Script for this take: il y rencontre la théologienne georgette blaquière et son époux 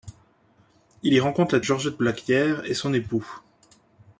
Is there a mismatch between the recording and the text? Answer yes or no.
yes